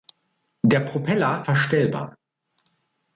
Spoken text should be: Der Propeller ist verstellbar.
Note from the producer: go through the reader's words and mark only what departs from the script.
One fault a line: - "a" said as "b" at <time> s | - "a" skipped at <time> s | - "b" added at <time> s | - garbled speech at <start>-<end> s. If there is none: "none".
- "ist" skipped at 1.4 s